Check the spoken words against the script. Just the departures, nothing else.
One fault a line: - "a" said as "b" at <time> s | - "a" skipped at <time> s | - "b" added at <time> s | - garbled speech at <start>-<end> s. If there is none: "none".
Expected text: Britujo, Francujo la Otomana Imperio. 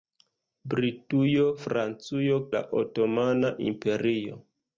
none